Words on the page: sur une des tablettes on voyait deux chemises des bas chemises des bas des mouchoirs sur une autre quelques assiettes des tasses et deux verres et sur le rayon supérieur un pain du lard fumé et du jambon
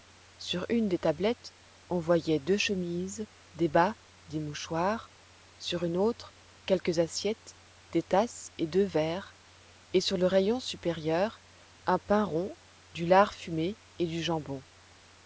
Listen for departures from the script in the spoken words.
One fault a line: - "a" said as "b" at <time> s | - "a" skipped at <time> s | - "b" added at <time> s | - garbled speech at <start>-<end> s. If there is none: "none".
- "chemises" skipped at 4.0 s
- "bas des" skipped at 4.4 s
- "rond" added at 12.3 s